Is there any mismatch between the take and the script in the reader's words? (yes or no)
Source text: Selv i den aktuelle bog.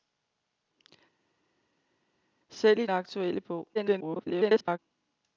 yes